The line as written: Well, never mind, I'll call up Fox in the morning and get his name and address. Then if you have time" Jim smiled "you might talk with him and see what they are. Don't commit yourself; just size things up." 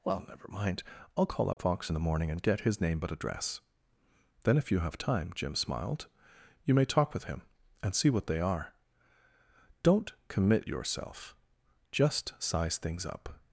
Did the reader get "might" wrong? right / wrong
wrong